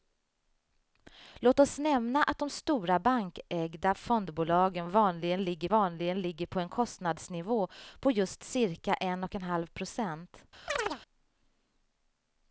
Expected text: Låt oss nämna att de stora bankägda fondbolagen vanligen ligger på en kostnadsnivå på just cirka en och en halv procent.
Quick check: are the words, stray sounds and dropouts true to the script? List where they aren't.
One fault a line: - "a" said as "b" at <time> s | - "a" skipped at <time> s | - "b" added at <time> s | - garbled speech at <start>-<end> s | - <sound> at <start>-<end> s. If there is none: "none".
- "vanligen ligger" added at 5.7 s
- chirp at 10.7-11.0 s